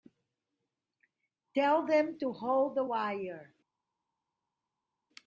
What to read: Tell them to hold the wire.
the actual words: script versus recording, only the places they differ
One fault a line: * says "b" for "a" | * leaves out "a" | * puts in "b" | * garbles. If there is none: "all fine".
all fine